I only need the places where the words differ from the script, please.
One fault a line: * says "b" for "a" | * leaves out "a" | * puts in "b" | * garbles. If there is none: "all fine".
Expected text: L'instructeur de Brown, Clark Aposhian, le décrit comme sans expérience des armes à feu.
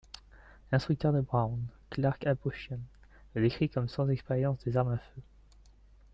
all fine